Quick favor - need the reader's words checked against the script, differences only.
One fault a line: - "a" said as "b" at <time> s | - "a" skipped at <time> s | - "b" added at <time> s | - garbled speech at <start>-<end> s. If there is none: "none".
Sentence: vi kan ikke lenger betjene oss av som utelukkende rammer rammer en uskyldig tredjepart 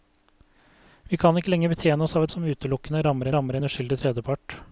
none